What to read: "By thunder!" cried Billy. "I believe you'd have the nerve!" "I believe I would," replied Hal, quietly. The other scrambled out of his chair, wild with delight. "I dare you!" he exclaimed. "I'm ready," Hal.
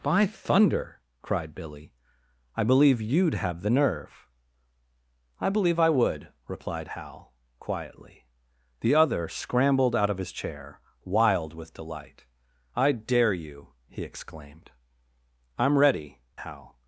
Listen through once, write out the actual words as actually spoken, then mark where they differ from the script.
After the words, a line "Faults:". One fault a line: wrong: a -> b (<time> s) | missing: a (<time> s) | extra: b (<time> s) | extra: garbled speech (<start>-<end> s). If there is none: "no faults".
"By thunder!" cried Billy. "I believe you'd have the nerve!" "I believe I would," replied Hal, quietly. The other scrambled out of his chair, wild with delight. "I dare you!" he exclaimed. "I'm ready," Hal.
Faults:
no faults